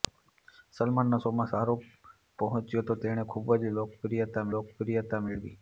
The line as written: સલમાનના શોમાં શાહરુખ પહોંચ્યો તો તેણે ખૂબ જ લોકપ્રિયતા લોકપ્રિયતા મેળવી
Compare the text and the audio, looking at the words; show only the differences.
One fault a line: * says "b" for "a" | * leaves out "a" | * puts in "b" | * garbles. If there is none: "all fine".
all fine